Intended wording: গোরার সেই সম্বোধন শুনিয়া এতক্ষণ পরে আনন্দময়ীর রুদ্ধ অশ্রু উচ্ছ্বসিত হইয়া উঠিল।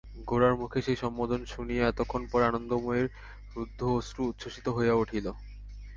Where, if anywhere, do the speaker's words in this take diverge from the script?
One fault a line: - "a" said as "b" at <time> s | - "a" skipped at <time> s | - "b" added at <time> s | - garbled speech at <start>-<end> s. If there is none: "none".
- "মুখে" added at 0.6 s